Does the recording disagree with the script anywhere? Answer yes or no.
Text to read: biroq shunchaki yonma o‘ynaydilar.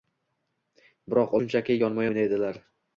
no